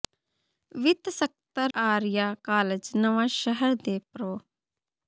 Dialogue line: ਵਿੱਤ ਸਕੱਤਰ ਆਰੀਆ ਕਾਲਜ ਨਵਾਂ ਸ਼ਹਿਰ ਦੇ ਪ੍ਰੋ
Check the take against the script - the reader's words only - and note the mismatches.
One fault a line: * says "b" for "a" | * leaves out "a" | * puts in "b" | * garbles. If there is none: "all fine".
all fine